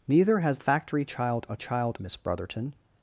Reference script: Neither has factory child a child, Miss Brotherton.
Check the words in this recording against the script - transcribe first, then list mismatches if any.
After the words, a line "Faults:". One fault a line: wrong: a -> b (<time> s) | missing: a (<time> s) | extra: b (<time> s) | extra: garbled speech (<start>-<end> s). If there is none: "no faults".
Neither has factory child a child, Miss Brotherton.
Faults:
no faults